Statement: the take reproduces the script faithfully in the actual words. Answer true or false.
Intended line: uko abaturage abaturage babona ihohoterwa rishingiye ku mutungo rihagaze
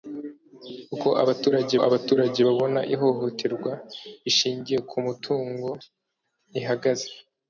true